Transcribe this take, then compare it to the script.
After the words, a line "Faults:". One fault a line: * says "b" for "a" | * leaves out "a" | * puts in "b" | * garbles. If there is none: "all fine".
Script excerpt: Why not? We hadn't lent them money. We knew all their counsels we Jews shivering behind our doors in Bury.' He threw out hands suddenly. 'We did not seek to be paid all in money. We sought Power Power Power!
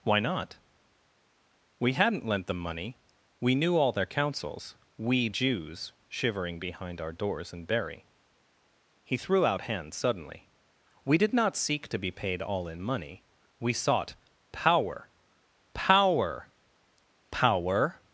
Why not? We hadn't lent them money. We knew all their counsels we Jews shivering behind our doors in Bury.' He threw out hands suddenly. 'We did not seek to be paid all in money. We sought Power Power Power!
Faults:
all fine